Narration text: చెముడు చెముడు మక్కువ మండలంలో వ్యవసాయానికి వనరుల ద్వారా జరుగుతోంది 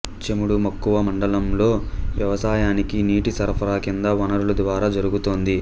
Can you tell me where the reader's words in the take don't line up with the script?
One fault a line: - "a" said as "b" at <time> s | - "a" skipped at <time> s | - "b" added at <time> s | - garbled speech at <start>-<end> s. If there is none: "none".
- "చెముడు" skipped at 0.6 s
- "నీటి సరఫరా కింది" added at 3.1 s